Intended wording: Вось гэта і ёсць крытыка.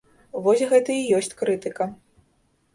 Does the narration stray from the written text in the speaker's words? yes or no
no